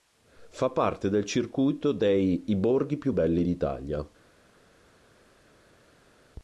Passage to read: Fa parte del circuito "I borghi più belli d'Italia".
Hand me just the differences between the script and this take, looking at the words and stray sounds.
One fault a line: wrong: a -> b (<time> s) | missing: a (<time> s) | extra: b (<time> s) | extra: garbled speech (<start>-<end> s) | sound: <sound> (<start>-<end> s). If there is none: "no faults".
extra: dei (1.9 s)